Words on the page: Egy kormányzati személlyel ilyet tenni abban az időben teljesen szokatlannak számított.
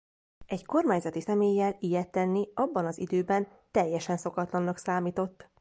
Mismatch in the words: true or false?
false